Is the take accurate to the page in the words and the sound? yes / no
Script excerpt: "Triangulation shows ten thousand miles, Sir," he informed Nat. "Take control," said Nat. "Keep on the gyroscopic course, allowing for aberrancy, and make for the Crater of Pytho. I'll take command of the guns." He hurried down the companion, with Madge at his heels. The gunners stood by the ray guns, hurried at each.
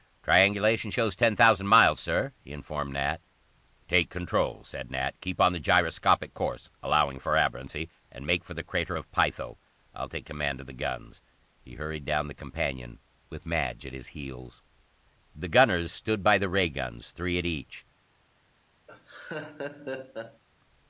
no